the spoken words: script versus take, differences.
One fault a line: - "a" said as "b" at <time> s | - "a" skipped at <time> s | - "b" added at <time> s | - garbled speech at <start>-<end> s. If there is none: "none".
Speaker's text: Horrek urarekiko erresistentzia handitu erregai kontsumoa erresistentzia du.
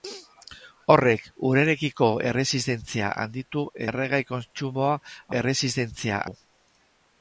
none